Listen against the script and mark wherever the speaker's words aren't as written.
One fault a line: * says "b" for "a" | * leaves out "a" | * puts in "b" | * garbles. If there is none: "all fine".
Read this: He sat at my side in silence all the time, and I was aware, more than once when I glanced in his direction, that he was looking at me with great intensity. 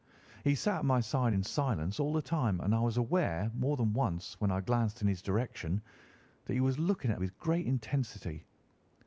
* leaves out "me"